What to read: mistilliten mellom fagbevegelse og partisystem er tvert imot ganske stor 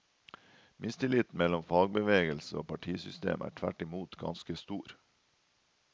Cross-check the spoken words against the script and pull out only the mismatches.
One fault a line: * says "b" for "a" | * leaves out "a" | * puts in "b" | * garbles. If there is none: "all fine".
all fine